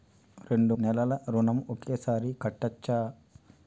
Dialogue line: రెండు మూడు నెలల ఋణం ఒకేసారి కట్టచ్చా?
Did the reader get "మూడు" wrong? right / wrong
wrong